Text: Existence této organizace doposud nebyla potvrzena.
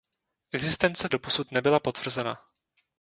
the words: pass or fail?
fail